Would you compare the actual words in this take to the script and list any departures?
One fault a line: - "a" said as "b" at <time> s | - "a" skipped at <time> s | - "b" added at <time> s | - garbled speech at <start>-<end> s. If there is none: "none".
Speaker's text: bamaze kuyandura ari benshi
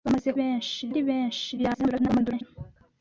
- "kuyandura" said as "benshi" at 0.4 s
- garbled speech at 1.6-2.4 s